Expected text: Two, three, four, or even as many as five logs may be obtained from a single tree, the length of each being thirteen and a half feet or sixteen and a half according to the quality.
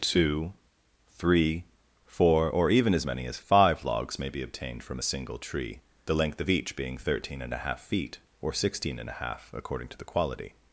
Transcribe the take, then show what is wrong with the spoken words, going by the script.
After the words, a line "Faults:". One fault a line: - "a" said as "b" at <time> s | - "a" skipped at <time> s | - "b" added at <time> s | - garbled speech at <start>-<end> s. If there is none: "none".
Two, three, four, or even as many as five logs may be obtained from a single tree, the length of each being thirteen and a half feet or sixteen and a half according to the quality.
Faults:
none